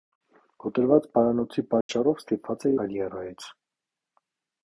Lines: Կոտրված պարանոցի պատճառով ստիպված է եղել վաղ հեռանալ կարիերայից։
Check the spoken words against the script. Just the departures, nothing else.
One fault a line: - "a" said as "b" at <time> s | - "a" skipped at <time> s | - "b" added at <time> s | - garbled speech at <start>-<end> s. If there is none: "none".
- "եղել վաղ հեռանալ" skipped at 2.7 s